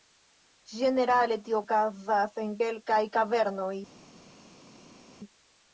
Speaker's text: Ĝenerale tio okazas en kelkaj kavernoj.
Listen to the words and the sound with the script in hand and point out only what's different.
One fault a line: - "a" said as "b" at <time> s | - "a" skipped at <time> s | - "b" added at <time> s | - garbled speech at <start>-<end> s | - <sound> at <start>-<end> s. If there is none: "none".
none